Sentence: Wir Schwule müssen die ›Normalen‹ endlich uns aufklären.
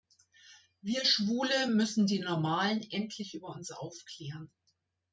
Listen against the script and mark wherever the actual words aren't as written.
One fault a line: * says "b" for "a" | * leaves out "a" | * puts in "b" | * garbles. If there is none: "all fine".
* puts in "über"